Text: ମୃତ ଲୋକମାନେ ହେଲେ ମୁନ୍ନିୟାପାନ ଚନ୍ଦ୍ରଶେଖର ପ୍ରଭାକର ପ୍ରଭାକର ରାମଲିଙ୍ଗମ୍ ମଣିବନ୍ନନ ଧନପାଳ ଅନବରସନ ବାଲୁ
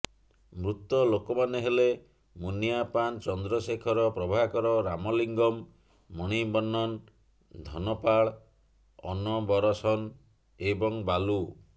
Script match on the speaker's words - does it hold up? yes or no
no